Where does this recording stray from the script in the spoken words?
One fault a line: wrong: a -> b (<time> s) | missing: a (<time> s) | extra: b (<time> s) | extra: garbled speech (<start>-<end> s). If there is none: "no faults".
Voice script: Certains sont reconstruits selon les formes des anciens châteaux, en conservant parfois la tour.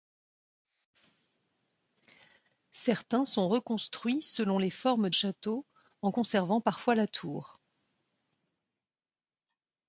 missing: des anciens (5.1 s)